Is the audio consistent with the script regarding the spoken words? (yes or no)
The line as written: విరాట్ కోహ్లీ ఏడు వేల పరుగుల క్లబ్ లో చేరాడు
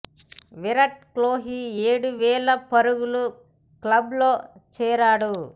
yes